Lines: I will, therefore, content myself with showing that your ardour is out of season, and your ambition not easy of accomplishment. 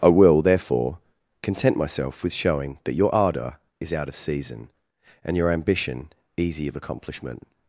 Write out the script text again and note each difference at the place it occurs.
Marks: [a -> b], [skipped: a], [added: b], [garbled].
I will, therefore, content myself with showing that your ardour is out of season, and your ambition [skipped: not] easy of accomplishment.